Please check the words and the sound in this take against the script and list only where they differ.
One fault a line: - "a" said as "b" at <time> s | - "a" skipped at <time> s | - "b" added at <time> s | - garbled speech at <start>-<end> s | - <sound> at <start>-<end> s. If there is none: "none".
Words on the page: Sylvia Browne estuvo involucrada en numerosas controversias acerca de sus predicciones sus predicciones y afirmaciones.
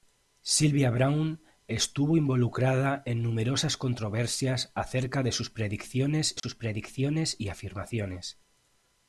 - dropout at 6.4-6.4 s